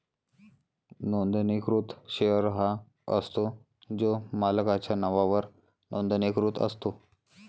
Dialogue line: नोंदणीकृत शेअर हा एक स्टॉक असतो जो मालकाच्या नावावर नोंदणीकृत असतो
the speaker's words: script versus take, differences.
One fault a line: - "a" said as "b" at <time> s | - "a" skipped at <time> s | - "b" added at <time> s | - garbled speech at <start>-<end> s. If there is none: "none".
- "एक स्टॉक" skipped at 2.7 s